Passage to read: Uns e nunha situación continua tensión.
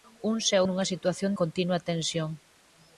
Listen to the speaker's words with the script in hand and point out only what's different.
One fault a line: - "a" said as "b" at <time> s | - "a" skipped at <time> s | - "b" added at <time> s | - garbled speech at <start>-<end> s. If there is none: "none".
none